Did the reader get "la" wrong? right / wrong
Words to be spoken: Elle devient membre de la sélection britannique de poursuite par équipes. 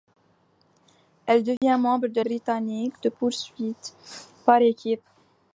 wrong